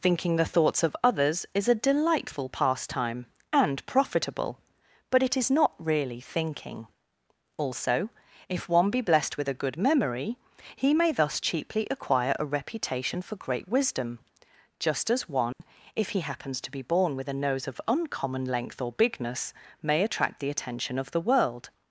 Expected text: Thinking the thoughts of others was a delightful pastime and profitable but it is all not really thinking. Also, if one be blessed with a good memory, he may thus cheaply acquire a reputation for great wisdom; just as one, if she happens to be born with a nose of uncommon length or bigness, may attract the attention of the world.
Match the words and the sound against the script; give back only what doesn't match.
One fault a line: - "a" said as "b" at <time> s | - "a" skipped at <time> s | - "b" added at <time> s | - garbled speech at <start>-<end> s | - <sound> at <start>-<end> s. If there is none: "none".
- "was" said as "is" at 1.5 s
- "all" skipped at 5.5 s
- dropout at 15.5-15.6 s
- "she" said as "he" at 16.1 s